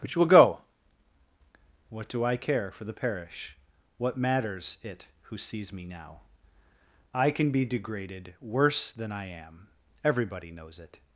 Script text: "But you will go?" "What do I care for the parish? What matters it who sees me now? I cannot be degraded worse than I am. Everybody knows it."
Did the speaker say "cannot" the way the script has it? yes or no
no